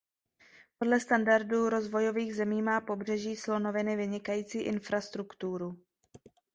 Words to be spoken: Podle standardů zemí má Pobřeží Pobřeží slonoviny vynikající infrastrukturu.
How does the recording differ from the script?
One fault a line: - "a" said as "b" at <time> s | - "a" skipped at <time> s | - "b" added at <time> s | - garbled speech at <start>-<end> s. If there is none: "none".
- "rozvojových" added at 1.7 s
- "Pobřeží" skipped at 3.4 s